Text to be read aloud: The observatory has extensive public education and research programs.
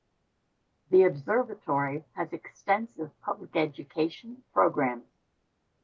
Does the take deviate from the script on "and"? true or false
true